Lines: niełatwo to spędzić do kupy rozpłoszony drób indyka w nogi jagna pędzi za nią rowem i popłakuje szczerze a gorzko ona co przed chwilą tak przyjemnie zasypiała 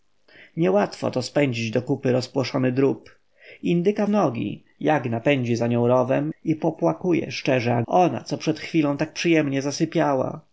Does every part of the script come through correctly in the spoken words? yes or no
no